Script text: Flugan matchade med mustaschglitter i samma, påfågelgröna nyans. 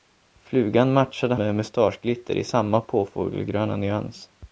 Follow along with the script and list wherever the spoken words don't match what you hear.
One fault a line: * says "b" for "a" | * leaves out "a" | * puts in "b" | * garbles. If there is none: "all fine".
all fine